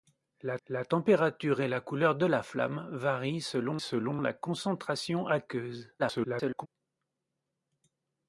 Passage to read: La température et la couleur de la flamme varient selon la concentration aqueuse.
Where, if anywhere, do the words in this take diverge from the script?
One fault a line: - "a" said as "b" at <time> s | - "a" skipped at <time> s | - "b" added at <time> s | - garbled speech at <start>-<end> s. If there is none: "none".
- "la" added at 0.7 s
- "selon" added at 3.8 s
- garbled speech at 6.0-6.7 s